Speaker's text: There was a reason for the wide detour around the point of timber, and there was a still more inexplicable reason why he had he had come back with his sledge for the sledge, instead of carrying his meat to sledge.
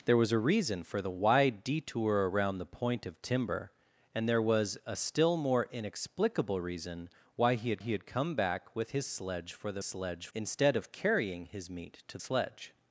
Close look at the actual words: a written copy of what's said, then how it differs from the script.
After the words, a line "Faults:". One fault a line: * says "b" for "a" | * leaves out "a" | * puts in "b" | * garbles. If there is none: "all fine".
There was a reason for the wide detour around the point of timber, and there was a still more inexplicable reason why he had he had come back with his sledge for the sledge, instead of carrying his meat to sledge.
Faults:
all fine